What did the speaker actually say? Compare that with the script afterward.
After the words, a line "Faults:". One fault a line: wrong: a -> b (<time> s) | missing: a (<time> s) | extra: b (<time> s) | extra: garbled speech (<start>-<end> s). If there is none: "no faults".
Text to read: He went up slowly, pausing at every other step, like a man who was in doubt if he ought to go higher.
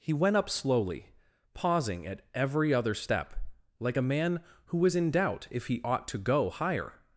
He went up slowly, pausing at every other step, like a man who was in doubt if he ought to go higher.
Faults:
no faults